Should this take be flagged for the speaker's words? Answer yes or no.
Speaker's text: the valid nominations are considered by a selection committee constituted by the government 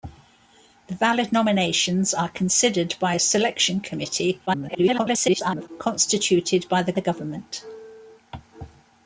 yes